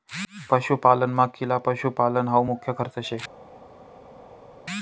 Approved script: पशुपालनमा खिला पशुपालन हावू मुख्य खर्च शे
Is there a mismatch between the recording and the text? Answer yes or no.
no